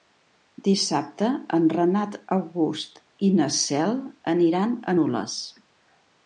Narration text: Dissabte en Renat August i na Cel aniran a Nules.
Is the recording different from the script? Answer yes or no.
no